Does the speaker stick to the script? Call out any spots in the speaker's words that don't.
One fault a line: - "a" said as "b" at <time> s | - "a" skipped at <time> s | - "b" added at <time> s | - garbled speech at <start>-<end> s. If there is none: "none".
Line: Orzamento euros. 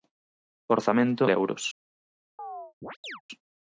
none